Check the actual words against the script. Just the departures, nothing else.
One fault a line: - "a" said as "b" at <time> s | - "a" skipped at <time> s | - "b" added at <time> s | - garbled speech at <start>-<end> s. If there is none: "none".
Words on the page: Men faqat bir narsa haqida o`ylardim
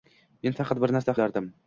- "haqida" skipped at 1.2 s